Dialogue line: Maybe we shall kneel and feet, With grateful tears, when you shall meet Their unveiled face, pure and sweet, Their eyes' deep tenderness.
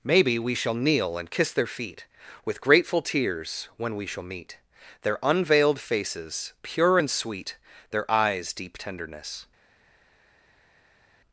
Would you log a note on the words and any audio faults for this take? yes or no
yes